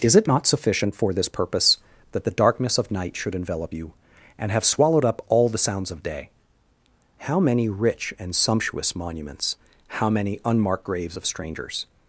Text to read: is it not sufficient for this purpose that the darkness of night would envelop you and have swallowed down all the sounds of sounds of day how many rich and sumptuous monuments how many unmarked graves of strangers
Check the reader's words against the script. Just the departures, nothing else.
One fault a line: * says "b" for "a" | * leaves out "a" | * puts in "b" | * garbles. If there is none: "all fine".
* says "should" for "would"
* says "up" for "down"
* leaves out "sounds of"